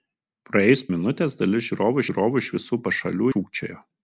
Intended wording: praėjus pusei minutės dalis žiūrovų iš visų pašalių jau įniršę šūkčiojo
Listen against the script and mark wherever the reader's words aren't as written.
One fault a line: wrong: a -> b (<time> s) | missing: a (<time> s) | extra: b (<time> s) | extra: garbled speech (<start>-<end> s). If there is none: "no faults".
missing: pusei (0.8 s)
extra: žiūrovų (2.1 s)
missing: jau įniršę (3.3 s)